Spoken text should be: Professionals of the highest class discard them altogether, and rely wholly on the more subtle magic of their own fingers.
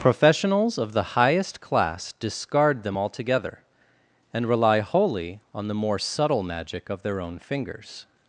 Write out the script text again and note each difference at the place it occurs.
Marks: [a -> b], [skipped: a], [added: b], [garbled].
Professionals of the highest class discard them altogether, and rely wholly on the more subtle magic of their own fingers.